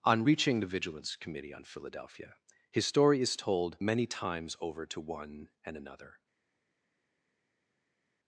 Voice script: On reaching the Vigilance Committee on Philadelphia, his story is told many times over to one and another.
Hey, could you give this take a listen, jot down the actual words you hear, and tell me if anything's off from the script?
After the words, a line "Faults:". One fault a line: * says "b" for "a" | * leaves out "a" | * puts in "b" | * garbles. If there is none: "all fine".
On reaching the Vigilance Committee on Philadelphia, his story is told many times over to one and another.
Faults:
all fine